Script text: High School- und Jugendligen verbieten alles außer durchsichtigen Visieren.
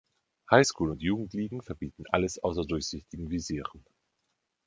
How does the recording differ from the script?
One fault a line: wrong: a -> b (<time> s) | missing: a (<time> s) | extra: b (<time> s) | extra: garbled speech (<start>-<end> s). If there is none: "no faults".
no faults